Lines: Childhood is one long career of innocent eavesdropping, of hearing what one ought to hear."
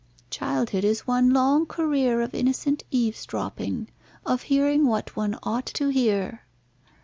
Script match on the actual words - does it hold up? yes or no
yes